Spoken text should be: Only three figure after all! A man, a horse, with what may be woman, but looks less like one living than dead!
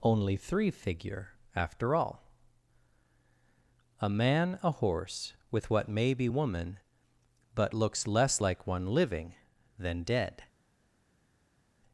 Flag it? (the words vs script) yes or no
no